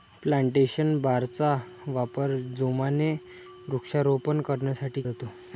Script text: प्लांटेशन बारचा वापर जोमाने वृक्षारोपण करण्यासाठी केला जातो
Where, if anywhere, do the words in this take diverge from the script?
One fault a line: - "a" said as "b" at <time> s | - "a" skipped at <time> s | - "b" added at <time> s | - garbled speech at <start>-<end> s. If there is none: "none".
- "केला" skipped at 5.0 s